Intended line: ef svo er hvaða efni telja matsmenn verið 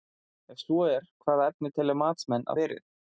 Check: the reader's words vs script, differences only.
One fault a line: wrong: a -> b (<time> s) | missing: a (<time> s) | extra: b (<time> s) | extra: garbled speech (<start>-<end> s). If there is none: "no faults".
no faults